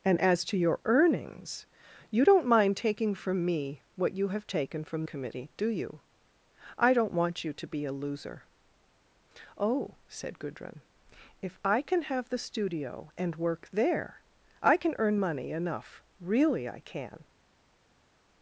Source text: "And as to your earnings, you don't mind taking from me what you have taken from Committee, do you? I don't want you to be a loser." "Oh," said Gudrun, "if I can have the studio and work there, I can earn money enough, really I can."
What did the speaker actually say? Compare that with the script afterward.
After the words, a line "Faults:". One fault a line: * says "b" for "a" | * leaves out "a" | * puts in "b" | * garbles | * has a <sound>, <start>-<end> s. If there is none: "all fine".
"And as to your earnings, you don't mind taking from me what you have taken from Committee, do you? I don't want you to be a loser." "Oh," said Gudrun, "if I can have the studio and work there, I can earn money enough, really I can."
Faults:
all fine